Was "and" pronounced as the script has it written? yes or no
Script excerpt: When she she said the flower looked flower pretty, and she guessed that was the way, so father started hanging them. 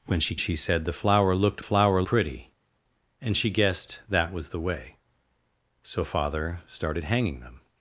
yes